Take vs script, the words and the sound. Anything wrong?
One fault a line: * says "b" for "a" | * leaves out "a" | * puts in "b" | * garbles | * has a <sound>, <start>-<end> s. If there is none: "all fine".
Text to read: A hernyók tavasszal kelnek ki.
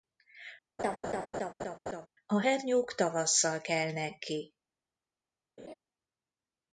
* has a laugh, 0.8-2.1 s
* has a laugh, 5.6-5.7 s